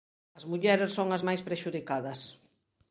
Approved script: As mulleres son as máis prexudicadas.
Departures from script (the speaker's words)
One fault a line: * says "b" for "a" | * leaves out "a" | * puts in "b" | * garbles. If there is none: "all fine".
all fine